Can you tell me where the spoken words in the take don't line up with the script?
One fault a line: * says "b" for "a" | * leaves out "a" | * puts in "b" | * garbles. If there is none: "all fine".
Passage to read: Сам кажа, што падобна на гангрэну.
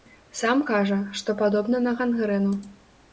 all fine